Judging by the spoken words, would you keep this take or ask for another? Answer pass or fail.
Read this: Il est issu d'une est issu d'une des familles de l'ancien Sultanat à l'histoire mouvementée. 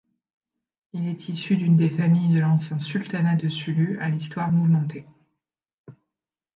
fail